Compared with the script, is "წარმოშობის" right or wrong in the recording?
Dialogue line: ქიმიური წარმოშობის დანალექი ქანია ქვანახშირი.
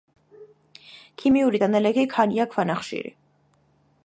wrong